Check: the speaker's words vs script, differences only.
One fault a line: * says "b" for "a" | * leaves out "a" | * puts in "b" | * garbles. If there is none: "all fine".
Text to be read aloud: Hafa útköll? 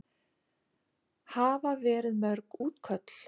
* puts in "verið mörg"